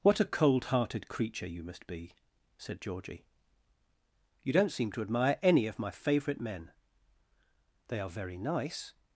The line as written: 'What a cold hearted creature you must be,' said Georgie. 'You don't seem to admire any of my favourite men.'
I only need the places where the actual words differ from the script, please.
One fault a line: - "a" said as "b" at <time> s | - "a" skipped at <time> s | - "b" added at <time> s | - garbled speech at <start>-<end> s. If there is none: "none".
- "They are very nice" added at 7.9 s